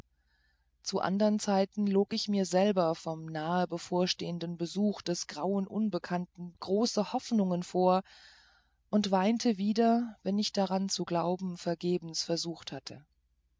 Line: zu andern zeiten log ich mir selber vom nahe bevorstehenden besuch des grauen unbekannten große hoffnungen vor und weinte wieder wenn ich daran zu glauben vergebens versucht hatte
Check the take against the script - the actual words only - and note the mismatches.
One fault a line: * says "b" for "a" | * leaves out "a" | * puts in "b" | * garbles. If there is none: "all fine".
all fine